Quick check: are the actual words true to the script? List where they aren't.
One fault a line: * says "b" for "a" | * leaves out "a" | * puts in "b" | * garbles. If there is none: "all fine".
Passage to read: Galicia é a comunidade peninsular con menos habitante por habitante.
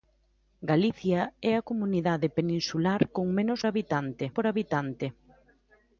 all fine